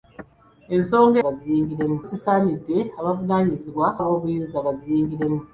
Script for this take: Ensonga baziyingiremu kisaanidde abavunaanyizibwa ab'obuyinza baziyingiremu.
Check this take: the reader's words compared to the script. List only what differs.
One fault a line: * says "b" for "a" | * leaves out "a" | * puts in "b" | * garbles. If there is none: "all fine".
all fine